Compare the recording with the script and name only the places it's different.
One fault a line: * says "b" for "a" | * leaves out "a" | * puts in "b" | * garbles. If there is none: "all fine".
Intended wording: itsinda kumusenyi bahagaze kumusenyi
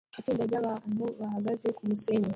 * says "ryabantu" for "kumusenyi"